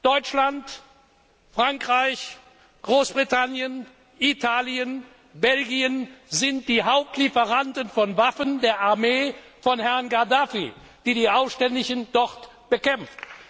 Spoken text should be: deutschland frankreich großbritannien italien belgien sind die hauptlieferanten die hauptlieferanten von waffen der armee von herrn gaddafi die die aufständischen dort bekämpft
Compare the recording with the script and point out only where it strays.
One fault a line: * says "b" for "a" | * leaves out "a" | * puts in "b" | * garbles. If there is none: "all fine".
* leaves out "die hauptlieferanten"